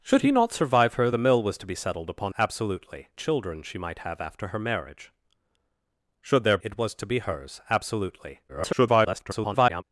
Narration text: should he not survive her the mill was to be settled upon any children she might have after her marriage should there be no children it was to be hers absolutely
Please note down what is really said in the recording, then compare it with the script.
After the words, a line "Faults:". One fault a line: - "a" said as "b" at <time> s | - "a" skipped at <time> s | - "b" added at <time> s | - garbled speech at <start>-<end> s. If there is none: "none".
should he not survive her the mill was to be settled upon absolutely children she might have after her marriage should there it was to be hers absolutely [garbled]
Faults:
- "any" said as "absolutely" at 2.4 s
- "be no children" skipped at 6.6 s
- garbled speech at 8.5-9.8 s